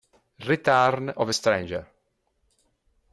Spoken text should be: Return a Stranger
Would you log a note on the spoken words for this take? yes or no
yes